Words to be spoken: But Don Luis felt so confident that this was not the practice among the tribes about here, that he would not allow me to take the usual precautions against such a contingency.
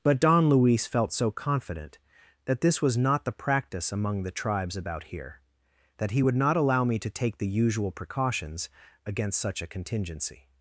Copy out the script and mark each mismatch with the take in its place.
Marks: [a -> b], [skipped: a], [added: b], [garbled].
But Don Luis felt so confident that this was not the practice among the tribes about here, that he would not allow me to take the usual precautions against such a contingency.